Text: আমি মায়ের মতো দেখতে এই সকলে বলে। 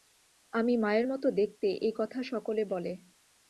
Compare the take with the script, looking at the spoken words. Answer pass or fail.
fail